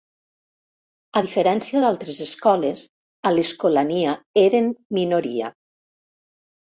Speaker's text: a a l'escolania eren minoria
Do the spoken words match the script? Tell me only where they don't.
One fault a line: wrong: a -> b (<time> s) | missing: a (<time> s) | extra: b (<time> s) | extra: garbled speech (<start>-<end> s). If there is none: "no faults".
extra: diferència d'altres escoles (1.2 s)